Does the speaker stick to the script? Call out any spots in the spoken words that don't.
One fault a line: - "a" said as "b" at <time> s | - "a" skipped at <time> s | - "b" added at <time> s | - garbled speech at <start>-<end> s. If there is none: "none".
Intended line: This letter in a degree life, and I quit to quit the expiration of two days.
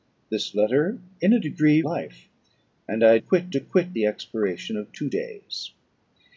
none